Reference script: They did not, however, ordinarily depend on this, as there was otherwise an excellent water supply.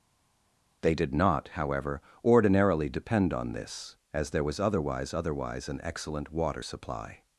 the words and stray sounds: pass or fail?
fail